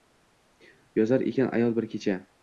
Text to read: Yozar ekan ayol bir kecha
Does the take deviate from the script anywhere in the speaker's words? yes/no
no